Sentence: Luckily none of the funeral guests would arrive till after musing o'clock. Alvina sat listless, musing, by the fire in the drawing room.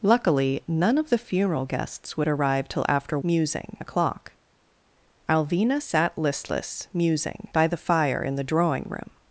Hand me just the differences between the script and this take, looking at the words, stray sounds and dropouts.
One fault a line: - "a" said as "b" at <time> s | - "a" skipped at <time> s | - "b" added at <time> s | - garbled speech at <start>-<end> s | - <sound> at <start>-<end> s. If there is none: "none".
none